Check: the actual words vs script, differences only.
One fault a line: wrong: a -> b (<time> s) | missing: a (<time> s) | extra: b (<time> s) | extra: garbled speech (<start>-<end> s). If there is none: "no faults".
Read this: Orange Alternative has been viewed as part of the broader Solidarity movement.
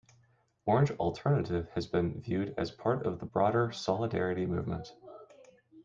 no faults